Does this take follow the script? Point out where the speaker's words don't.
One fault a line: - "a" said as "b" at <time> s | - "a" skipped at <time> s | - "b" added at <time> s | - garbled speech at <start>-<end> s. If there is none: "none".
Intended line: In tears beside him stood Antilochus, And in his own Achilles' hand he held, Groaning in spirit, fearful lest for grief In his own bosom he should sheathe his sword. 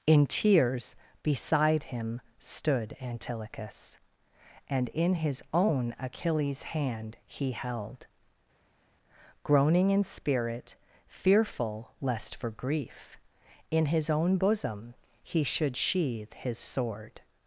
none